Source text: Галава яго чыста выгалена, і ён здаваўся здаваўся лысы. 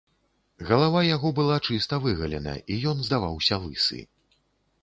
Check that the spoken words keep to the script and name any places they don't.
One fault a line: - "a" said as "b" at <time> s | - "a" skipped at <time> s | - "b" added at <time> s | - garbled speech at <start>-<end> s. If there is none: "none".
- "была" added at 1.4 s
- "здаваўся" skipped at 3.5 s